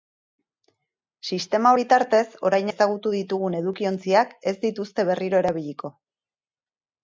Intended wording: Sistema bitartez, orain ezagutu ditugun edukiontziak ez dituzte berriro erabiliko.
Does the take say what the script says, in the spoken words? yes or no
yes